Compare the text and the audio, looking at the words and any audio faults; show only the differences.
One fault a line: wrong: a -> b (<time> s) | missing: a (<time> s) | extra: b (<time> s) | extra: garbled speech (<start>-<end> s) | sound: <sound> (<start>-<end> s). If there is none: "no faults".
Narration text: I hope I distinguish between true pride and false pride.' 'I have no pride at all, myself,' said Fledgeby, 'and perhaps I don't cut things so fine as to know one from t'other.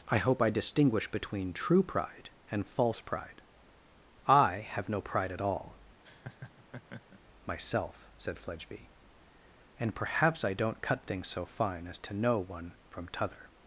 sound: laugh (6.0-7.2 s)